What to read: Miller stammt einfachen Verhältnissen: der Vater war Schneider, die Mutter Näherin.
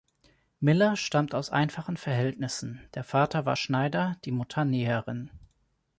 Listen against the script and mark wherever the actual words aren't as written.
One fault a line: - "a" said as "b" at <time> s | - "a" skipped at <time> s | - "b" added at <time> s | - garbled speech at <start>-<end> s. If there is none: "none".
- "aus" added at 1.4 s